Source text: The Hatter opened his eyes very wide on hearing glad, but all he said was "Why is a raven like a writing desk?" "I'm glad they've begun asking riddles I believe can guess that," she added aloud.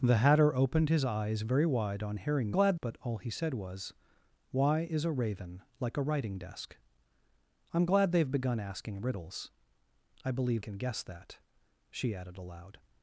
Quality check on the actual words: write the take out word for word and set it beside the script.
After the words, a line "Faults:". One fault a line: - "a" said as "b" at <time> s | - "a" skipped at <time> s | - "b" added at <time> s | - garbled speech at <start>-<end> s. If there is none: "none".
The Hatter opened his eyes very wide on hearing glad, but all he said was "Why is a raven like a writing desk?" "I'm glad they've begun asking riddles I believe can guess that," she added aloud.
Faults:
none